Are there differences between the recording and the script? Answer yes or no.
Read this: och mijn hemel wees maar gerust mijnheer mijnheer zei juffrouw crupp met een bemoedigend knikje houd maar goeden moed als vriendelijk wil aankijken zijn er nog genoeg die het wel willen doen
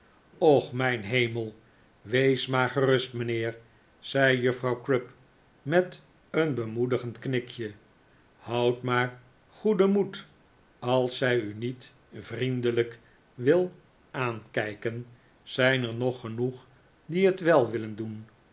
yes